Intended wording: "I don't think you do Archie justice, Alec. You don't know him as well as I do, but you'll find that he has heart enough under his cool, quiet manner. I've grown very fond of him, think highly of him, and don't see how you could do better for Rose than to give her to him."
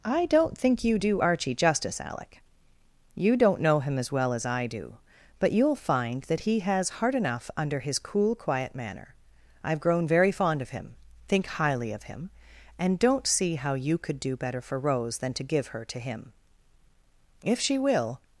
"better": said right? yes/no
yes